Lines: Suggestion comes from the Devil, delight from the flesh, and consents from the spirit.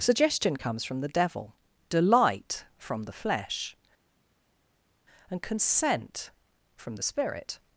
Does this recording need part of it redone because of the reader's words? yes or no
yes